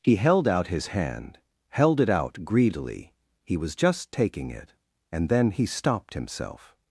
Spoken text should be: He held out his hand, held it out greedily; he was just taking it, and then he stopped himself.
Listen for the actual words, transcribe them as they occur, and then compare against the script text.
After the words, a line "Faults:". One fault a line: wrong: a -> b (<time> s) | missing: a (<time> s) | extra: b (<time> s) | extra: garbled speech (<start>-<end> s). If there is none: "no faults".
He held out his hand, held it out greedily; he was just taking it, and then he stopped himself.
Faults:
no faults